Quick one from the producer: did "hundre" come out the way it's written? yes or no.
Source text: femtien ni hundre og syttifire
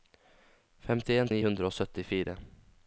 yes